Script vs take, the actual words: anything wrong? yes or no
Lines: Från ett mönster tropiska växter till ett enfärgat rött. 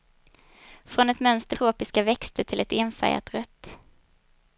no